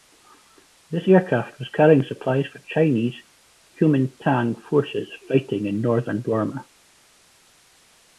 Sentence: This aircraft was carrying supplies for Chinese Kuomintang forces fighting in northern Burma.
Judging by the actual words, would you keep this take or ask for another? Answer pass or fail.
pass